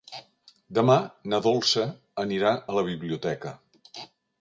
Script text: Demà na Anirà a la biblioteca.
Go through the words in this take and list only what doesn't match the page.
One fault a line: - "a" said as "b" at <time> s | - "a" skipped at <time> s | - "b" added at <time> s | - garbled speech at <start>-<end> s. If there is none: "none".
- "Dolça" added at 1.5 s